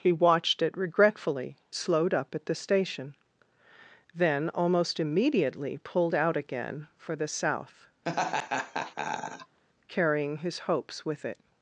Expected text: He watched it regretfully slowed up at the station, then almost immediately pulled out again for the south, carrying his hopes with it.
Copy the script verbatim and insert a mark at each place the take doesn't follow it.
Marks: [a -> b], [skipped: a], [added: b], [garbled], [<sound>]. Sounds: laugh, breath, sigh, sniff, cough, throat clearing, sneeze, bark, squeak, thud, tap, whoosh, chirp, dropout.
He watched it regretfully slowed up at the station, then almost immediately pulled out again for the south, [laugh] carrying his hopes with it.